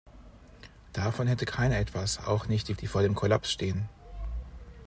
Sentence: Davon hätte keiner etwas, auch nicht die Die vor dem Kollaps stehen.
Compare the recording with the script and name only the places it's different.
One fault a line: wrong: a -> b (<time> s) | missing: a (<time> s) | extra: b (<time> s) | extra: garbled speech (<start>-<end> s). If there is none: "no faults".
no faults